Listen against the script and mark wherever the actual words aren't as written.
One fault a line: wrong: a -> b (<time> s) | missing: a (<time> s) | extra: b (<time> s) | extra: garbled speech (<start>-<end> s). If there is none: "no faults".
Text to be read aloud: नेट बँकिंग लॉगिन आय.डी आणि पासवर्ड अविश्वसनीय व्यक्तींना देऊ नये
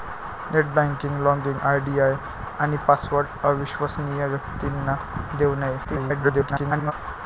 extra: garbled speech (5.8-6.9 s)